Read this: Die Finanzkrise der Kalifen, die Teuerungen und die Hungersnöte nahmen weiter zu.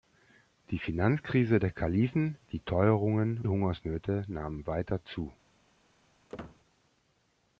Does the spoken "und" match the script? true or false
false